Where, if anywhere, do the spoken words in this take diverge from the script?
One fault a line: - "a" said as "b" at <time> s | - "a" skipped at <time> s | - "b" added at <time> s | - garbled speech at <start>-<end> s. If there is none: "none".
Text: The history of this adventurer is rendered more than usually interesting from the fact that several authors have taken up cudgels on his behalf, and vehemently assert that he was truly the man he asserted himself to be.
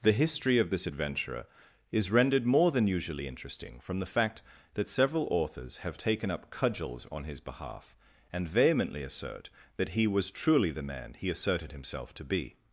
none